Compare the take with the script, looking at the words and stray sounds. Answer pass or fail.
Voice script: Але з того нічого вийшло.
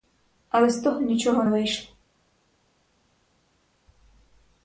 pass